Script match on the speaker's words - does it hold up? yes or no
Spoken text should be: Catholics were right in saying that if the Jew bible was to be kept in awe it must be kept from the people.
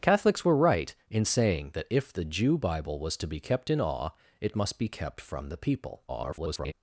no